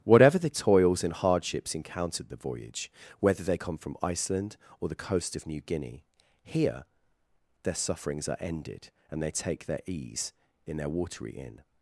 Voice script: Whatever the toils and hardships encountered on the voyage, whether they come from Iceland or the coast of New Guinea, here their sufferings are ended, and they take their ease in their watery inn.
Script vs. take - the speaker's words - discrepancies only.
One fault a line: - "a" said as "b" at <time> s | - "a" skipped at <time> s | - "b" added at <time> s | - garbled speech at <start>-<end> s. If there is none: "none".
- "on" skipped at 2.3 s